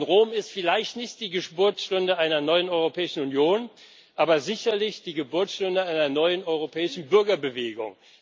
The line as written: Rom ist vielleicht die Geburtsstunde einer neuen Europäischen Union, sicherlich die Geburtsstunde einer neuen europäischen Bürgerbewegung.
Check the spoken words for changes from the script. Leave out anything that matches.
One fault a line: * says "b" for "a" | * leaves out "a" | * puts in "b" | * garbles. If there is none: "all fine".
* puts in "nicht"
* puts in "aber"